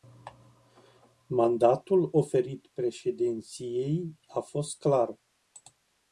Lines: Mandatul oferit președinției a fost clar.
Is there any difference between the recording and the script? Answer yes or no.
no